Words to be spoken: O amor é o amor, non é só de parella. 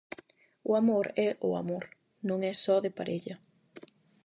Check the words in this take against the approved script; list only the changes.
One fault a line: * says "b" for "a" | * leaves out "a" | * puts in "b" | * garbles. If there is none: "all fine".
all fine